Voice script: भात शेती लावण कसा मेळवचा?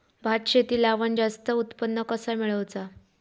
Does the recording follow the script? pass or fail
fail